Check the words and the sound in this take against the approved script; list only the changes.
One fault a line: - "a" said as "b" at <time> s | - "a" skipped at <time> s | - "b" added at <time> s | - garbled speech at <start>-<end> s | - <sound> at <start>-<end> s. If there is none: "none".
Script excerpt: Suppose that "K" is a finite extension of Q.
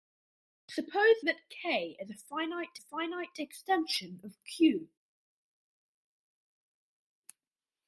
- "finite" added at 2.8 s